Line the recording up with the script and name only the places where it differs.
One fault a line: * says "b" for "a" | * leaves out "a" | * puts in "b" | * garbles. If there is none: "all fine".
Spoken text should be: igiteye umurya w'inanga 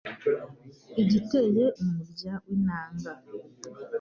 all fine